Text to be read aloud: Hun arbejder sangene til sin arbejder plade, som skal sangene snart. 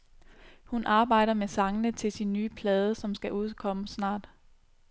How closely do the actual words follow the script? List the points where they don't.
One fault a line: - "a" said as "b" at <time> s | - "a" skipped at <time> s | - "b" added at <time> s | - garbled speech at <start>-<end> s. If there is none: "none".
- "med" added at 1.3 s
- "arbejder" said as "nye" at 2.3 s
- "sangene" said as "udkomme" at 3.3 s